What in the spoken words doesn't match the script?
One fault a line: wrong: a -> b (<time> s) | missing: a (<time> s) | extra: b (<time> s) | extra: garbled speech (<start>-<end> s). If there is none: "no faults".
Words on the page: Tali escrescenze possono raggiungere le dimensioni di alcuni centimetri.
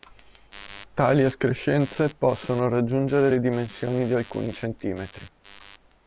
no faults